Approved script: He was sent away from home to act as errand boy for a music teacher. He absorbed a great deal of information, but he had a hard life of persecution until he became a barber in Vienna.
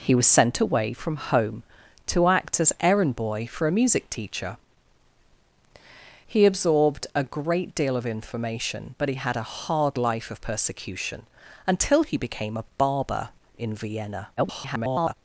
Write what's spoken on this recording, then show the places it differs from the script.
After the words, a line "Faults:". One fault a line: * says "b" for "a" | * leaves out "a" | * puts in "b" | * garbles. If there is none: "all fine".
He was sent away from home to act as errand boy for a music teacher. He absorbed a great deal of information, but he had a hard life of persecution until he became a barber in Vienna. [garbled]
Faults:
* garbles